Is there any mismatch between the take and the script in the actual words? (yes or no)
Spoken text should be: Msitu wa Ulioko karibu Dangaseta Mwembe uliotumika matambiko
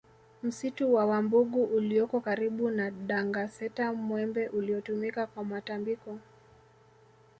yes